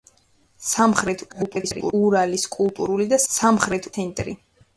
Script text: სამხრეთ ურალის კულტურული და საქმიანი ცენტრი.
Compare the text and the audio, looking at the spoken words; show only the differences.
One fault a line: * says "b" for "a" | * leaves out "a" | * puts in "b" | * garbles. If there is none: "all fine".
* garbles
* says "სამხრეთ" for "საქმიანი"